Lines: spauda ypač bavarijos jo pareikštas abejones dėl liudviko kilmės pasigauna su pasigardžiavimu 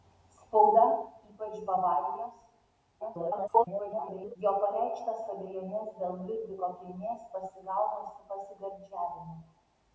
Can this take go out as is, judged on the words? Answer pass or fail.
fail